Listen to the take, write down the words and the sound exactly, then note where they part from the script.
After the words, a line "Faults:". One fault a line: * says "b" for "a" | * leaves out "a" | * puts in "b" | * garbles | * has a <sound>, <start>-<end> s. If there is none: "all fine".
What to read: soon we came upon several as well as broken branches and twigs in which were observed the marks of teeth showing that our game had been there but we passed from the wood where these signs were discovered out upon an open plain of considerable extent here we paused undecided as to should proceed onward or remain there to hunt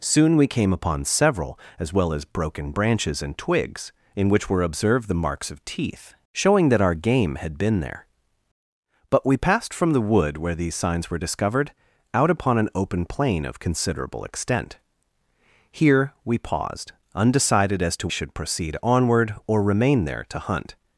soon we came upon several as well as broken branches and twigs in which were observed the marks of teeth showing that our game had been there but we passed from the wood where these signs were discovered out upon an open plain of considerable extent here we paused undecided as to should proceed onward or remain there to hunt
Faults:
all fine